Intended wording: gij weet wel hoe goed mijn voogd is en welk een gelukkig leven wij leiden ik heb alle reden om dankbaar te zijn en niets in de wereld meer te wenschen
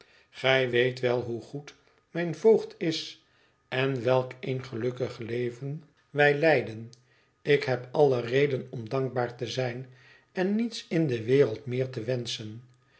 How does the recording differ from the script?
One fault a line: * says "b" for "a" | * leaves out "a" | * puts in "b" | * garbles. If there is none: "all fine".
all fine